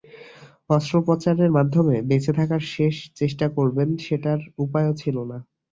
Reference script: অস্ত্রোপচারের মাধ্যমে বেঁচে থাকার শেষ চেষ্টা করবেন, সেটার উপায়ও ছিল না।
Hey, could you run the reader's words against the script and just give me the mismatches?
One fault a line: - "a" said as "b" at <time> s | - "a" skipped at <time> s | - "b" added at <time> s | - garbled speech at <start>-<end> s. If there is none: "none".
none